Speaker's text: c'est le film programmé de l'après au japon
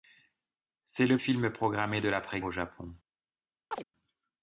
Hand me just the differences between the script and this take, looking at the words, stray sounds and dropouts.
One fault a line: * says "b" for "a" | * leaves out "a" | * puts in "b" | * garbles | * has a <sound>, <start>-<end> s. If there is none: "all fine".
* has a chirp, 3.7-3.8 s